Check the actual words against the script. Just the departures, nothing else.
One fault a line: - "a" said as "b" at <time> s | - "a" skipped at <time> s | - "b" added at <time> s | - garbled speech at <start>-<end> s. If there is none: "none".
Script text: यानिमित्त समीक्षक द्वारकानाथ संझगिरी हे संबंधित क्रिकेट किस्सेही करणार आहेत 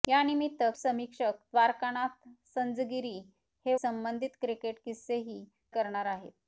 none